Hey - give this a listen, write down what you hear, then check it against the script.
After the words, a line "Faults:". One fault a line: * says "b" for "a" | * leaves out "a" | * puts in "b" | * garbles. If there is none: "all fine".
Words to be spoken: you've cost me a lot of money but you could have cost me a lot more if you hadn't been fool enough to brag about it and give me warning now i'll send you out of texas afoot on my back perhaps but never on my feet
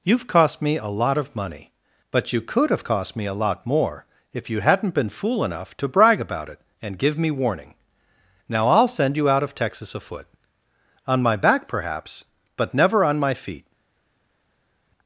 you've cost me a lot of money but you could have cost me a lot more if you hadn't been fool enough to brag about it and give me warning now i'll send you out of texas afoot on my back perhaps but never on my feet
Faults:
all fine